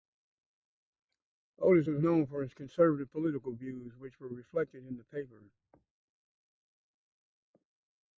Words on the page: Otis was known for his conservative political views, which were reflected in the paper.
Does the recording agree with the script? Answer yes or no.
yes